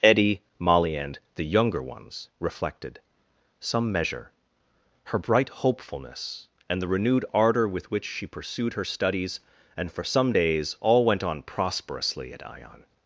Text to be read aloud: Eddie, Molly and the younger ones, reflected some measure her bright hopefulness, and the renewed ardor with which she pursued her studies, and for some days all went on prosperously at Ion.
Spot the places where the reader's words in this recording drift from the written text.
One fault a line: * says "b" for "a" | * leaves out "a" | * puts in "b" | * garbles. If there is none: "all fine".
all fine